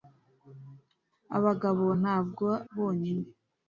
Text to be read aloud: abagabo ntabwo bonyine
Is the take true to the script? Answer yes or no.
yes